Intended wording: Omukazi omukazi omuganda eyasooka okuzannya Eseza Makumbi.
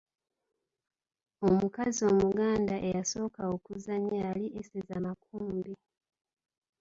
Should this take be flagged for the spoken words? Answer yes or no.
yes